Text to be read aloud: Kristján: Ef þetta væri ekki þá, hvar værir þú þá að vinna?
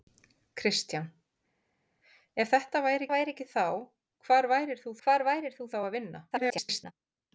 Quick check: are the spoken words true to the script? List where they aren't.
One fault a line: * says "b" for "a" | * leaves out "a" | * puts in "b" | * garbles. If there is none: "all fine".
* puts in "væri"
* puts in "hvar værir þú"
* garbles